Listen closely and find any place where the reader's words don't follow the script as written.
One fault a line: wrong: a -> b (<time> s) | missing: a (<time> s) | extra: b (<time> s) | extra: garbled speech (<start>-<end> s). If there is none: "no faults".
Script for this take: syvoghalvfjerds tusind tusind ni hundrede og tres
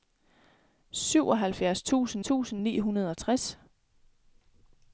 no faults